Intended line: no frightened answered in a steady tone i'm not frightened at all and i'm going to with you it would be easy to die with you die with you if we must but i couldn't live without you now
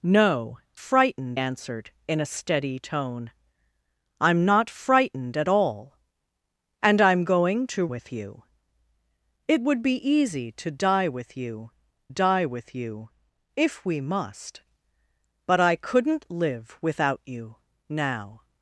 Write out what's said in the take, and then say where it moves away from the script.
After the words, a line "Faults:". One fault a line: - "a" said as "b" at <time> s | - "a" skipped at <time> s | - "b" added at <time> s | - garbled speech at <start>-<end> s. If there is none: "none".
no frightened answered in a steady tone i'm not frightened at all and i'm going to with you it would be easy to die with you die with you if we must but i couldn't live without you now
Faults:
none